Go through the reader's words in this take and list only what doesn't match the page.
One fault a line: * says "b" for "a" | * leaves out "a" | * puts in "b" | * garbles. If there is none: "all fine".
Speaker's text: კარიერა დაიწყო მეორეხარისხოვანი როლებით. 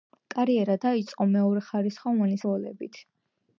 all fine